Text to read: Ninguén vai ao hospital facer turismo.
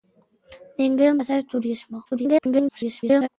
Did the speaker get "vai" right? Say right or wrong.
wrong